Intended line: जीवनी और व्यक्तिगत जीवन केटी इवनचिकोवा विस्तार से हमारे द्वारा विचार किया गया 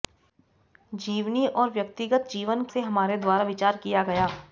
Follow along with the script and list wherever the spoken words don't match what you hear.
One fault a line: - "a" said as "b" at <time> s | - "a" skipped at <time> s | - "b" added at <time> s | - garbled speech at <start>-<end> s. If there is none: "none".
- "केटी इवनचिकोवा विस्तार" skipped at 2.6 s